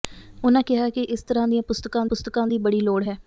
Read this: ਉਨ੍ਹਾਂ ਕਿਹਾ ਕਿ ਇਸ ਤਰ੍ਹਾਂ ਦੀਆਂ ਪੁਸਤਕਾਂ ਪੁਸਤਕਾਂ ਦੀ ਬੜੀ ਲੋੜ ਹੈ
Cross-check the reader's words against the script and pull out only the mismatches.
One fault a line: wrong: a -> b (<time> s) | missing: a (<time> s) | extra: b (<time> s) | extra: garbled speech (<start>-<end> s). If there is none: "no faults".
no faults